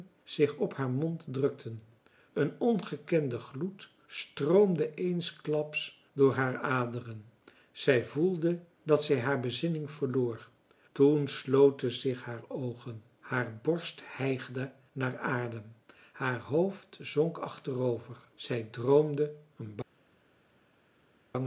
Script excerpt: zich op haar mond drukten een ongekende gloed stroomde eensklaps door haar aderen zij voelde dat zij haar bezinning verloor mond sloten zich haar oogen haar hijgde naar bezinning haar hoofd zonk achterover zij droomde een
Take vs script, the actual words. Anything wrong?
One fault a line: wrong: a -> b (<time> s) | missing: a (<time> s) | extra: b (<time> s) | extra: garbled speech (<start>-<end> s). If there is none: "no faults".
wrong: mond -> toen (10.9 s)
extra: borst (13.6 s)
wrong: bezinning -> adem (15.2 s)